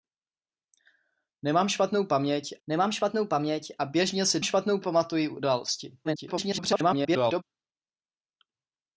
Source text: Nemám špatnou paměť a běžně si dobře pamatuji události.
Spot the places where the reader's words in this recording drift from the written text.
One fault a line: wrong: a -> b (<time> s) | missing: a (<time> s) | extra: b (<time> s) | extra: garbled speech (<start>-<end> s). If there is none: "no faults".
extra: nemám špatnou paměť (2.7 s)
wrong: dobře -> špatnou (4.4 s)
extra: garbled speech (6.0-7.4 s)